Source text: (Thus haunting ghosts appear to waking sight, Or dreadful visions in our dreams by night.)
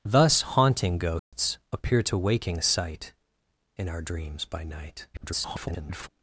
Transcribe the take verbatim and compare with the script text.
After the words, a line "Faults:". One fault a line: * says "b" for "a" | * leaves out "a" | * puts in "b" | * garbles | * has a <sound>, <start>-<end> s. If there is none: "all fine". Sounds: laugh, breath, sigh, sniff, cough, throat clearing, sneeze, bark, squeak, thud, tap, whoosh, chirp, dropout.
(Thus haunting ghosts appear to waking sight, In our dreams by night.) [garbled]
Faults:
* has a dropout, 1.2-1.3 s
* leaves out "Or dreadful visions"
* garbles